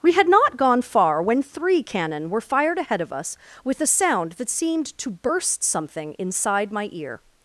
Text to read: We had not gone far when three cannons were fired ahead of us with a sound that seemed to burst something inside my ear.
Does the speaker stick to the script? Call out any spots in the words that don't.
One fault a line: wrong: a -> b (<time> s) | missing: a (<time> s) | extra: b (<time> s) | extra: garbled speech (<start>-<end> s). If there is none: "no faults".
wrong: cannons -> cannon (1.8 s)